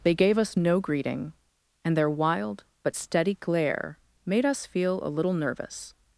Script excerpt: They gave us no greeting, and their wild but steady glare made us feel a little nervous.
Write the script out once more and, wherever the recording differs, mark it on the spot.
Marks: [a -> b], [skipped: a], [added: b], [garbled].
They gave us no greeting, and their wild but steady glare made us feel a little nervous.